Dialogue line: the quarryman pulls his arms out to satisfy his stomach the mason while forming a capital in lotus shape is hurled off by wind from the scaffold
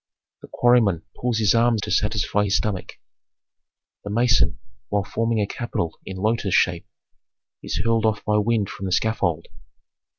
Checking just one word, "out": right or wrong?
wrong